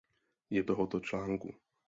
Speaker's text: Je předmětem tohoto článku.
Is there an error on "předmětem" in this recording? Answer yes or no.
yes